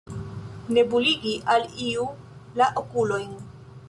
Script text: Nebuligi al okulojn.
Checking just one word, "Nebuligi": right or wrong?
right